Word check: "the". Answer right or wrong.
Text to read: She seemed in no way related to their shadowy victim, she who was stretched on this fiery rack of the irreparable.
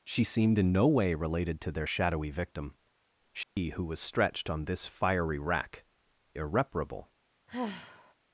wrong